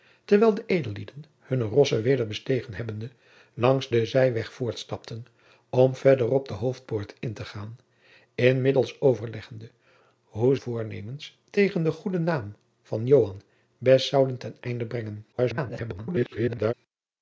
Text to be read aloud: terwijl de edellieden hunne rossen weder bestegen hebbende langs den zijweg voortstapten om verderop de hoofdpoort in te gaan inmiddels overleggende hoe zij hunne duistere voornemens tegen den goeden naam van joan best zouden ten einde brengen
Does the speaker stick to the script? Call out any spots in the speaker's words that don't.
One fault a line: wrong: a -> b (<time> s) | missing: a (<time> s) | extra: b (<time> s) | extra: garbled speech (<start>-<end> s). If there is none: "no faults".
missing: zij hunne duistere (10.6 s)
extra: garbled speech (15.3-16.7 s)